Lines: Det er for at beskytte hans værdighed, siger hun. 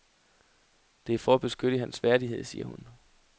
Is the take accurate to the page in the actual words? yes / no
yes